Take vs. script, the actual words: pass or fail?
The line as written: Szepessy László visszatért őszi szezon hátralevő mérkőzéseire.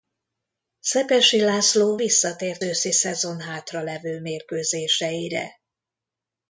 pass